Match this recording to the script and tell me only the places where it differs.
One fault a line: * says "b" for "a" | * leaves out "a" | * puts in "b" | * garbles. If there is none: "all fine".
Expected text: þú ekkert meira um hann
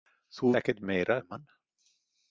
all fine